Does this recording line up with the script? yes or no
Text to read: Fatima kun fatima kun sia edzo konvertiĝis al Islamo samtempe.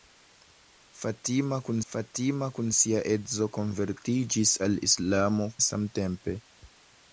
yes